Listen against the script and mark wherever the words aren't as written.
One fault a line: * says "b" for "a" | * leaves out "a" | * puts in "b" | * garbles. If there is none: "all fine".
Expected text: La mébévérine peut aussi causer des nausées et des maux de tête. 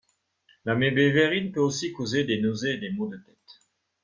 all fine